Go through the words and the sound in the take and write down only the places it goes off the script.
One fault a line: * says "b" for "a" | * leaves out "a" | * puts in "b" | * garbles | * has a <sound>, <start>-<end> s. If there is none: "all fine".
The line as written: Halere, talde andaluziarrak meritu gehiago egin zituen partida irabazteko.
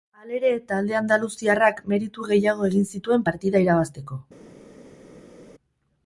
all fine